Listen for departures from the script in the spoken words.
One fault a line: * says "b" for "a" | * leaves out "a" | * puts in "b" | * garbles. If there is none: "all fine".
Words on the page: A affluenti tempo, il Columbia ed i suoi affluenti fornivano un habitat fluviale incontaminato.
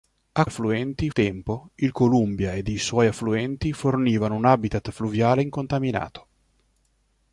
all fine